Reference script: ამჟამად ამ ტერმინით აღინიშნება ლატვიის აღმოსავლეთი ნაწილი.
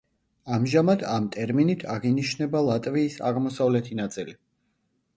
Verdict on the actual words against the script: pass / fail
pass